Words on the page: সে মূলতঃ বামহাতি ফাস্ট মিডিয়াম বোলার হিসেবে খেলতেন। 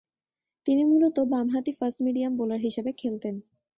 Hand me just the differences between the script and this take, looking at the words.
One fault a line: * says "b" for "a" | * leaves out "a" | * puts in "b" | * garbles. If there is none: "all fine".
* says "তিনি" for "সে"